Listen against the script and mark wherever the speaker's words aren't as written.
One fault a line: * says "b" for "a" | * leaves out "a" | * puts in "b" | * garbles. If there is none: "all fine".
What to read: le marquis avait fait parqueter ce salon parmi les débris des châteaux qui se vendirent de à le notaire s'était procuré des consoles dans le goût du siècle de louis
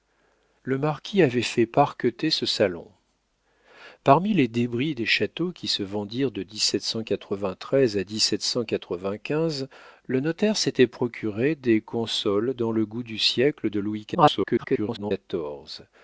* garbles